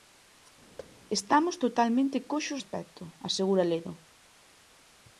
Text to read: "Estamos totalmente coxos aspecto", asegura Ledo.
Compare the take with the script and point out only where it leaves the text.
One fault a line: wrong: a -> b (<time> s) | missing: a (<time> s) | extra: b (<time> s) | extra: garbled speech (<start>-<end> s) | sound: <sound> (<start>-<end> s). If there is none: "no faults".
sound: thud (0.8-0.9 s)